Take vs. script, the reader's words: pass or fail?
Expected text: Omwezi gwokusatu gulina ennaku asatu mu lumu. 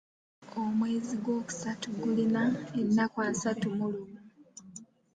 pass